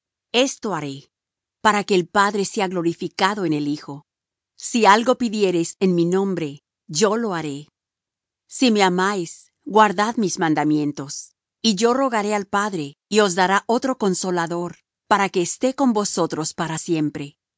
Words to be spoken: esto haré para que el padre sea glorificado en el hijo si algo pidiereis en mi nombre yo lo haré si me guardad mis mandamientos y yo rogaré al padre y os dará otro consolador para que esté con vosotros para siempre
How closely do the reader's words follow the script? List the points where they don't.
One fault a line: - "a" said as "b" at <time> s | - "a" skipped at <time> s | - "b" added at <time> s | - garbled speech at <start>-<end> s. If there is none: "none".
- "amáis" added at 8.8 s